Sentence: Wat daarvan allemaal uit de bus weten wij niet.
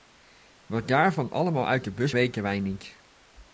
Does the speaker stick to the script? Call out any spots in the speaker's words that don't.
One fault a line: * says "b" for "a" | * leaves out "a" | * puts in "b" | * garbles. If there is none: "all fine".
all fine